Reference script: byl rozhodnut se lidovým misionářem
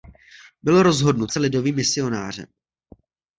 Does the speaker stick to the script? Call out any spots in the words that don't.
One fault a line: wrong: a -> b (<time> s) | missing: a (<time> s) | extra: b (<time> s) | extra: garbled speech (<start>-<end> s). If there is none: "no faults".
no faults